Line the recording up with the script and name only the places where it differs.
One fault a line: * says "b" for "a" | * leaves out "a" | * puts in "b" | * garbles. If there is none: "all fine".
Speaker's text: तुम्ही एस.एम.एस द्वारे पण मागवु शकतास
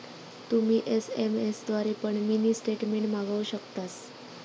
* puts in "मिनी स्टेटमेंट"